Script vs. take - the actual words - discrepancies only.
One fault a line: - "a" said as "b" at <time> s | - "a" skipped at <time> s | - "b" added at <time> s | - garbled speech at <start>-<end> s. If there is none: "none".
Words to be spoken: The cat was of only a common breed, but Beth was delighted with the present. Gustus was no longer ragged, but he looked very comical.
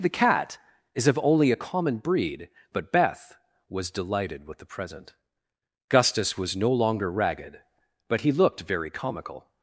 - "was" said as "is" at 0.9 s